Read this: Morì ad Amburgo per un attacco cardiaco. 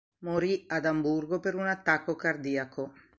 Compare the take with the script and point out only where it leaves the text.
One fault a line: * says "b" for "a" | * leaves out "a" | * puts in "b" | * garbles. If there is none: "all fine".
all fine